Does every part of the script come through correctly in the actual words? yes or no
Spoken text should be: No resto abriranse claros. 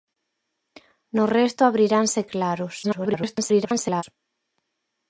no